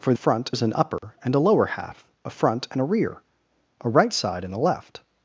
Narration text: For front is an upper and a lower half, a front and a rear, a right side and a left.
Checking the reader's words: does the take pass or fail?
pass